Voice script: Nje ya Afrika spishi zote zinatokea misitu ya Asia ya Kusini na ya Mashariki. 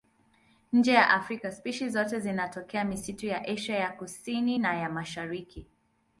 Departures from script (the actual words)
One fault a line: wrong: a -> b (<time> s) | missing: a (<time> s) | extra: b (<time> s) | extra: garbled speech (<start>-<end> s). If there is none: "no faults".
no faults